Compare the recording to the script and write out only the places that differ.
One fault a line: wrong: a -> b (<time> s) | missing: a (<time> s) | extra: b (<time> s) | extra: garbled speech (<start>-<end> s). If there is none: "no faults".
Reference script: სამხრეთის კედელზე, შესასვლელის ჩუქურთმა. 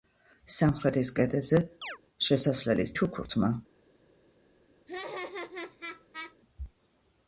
no faults